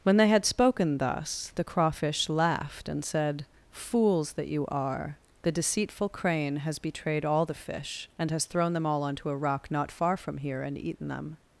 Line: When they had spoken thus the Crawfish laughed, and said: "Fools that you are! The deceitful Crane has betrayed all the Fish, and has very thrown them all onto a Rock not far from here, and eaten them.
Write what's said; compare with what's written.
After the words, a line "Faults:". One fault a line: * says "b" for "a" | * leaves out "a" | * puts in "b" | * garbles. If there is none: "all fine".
When they had spoken thus the Crawfish laughed, and said: "Fools that you are! The deceitful Crane has betrayed all the Fish, and has thrown them all onto a Rock not far from here, and eaten them.
Faults:
* leaves out "very"